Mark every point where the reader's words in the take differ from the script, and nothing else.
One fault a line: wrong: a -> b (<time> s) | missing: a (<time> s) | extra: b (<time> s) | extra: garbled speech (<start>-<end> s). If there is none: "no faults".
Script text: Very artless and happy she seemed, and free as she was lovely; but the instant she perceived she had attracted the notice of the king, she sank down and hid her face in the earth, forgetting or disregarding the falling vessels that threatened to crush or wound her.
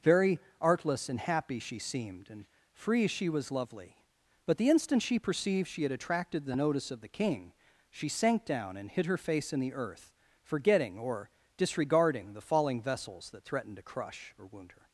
missing: as (3.1 s)